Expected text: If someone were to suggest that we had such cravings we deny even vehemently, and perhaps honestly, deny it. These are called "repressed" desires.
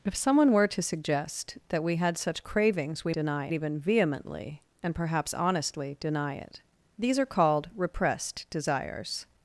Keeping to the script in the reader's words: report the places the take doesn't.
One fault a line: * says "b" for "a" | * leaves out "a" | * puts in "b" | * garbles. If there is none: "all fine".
all fine